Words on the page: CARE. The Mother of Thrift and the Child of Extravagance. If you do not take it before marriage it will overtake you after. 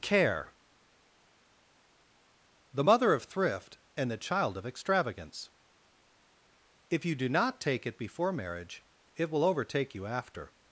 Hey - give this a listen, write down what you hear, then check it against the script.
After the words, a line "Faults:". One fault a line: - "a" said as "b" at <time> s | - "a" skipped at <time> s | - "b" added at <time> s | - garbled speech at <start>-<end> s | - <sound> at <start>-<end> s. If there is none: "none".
CARE. The Mother of Thrift and the Child of Extravagance. If you do not take it before marriage it will overtake you after.
Faults:
none